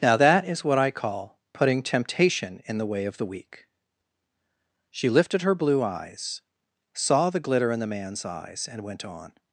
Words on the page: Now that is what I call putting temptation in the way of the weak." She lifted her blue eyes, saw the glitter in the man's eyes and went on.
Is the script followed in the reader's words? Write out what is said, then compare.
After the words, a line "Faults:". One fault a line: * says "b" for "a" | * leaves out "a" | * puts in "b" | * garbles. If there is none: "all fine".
Now that is what I call putting temptation in the way of the weak." She lifted her blue eyes, saw the glitter in the man's eyes and went on.
Faults:
all fine